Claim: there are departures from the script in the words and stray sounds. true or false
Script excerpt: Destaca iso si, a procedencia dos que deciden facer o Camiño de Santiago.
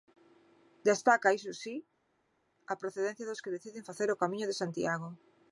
false